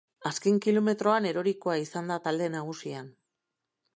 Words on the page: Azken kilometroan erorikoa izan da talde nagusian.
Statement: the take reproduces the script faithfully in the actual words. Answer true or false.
true